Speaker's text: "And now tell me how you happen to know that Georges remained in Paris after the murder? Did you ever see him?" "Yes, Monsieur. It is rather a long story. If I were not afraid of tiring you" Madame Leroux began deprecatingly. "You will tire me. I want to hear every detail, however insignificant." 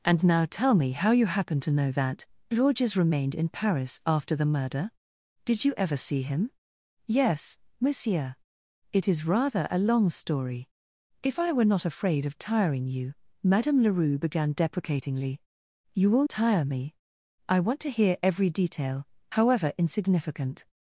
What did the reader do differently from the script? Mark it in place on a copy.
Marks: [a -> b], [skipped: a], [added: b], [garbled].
"And now tell me how you happen to know that Georges remained in Paris after the murder? Did you ever see him?" "Yes, Monsieur. It is rather a long story. If I were not afraid of tiring you" Madame Leroux began deprecatingly. "You will tire me. I want to hear every detail, however insignificant."